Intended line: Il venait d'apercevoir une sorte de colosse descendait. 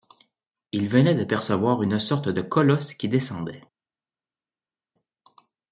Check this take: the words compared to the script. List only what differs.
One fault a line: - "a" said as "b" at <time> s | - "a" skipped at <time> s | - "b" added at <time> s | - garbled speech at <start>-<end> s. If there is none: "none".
- "qui" added at 3.0 s